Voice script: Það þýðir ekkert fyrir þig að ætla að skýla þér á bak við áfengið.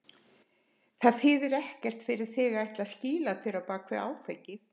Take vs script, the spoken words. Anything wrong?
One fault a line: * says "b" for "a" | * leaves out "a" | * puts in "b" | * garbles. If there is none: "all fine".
all fine